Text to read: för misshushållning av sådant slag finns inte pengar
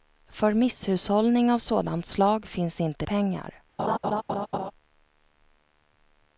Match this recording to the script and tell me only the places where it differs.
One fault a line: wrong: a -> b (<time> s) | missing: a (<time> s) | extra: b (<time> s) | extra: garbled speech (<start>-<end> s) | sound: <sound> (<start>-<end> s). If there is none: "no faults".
sound: laugh (3.8-4.7 s)